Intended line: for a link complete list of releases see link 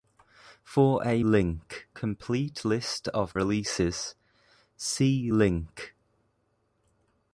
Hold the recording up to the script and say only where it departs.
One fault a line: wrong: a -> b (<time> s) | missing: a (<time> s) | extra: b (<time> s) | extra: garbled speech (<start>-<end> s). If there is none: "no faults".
no faults